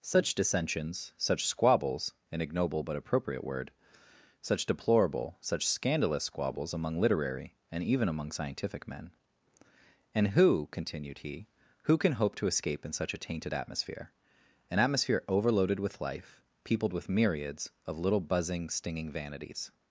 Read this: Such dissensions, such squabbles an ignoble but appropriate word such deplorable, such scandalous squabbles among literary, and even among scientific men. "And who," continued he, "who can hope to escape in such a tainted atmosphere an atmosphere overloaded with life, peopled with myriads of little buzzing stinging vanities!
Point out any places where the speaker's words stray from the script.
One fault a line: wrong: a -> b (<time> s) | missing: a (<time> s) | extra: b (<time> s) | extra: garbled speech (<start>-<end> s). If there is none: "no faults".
no faults